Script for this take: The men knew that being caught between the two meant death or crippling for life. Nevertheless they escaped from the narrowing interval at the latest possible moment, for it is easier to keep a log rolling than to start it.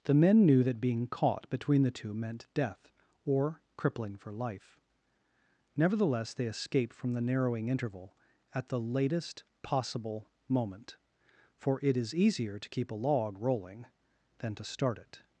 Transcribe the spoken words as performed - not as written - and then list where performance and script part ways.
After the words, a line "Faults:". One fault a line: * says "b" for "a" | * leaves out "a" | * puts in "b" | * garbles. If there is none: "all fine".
The men knew that being caught between the two meant death or crippling for life. Nevertheless they escaped from the narrowing interval at the latest possible moment, for it is easier to keep a log rolling than to start it.
Faults:
all fine